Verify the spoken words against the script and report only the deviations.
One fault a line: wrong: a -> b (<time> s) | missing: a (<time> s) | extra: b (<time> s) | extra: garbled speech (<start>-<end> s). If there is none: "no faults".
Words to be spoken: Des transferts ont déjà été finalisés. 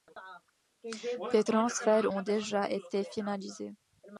no faults